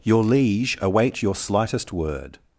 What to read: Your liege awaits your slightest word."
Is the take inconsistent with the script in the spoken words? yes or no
yes